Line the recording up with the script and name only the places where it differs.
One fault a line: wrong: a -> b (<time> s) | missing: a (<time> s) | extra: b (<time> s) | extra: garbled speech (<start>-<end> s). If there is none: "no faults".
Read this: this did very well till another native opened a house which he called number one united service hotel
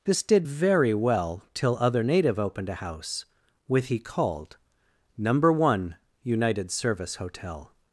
wrong: another -> other (1.8 s)
wrong: which -> with (3.7 s)